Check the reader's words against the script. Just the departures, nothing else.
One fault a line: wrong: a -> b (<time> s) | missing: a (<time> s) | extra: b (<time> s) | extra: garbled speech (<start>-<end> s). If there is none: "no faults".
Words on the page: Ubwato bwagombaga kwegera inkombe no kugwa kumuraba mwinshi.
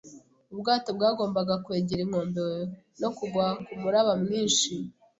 no faults